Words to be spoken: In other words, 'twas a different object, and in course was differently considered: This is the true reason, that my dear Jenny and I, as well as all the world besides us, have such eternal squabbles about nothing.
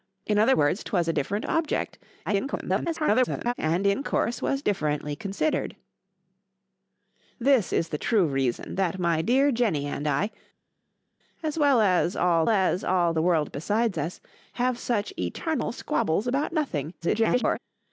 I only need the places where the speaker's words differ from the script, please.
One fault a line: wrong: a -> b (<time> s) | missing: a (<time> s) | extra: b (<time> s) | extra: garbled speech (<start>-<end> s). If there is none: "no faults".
extra: garbled speech (2.3-3.5 s)
extra: as all (12.5 s)
extra: garbled speech (17.0-17.6 s)